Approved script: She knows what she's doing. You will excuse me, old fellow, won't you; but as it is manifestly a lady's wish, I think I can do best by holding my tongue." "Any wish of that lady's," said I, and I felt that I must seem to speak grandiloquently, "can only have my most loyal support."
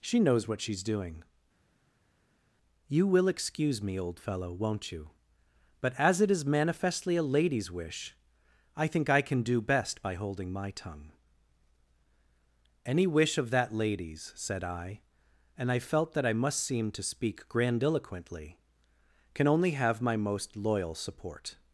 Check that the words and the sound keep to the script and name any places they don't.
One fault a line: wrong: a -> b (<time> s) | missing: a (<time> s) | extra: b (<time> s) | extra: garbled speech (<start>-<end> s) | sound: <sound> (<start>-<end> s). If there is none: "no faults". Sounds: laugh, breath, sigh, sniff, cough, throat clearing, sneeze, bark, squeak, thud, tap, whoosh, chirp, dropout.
no faults